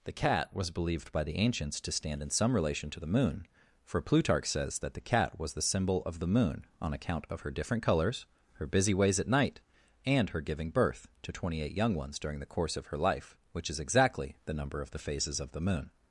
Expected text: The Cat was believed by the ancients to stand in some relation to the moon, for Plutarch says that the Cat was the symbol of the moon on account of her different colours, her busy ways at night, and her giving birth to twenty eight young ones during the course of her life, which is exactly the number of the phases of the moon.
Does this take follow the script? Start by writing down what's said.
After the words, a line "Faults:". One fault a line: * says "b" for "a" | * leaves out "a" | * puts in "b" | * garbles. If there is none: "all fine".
The Cat was believed by the ancients to stand in some relation to the moon, for Plutarch says that the Cat was the symbol of the moon on account of her different colours, her busy ways at night, and her giving birth to twenty eight young ones during the course of her life, which is exactly the number of the phases of the moon.
Faults:
all fine